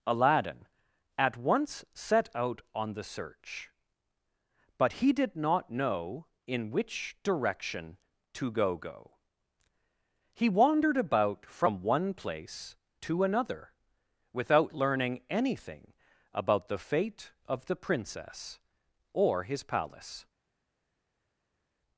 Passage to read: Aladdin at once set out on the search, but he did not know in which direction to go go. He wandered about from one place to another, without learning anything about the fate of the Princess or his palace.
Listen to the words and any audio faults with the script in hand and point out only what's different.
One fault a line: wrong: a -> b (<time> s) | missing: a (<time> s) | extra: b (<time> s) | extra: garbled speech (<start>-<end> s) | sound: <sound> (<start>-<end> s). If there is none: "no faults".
no faults